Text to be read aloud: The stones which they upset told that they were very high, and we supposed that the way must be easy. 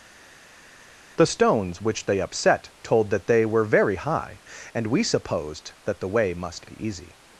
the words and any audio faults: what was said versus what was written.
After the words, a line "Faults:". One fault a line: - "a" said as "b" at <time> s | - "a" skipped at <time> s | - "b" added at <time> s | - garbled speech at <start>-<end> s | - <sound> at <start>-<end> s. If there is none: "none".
The stones which they upset told that they were very high, and we supposed that the way must be easy.
Faults:
none